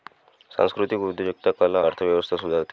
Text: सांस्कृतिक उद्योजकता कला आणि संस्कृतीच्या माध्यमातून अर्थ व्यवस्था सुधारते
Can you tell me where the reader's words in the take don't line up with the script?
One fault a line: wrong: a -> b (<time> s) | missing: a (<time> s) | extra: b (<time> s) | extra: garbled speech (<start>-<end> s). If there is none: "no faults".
missing: आणि संस्कृतीच्या माध्यमातून (1.9 s)